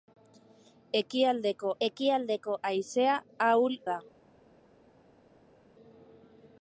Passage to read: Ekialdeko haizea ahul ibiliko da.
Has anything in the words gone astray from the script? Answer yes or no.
yes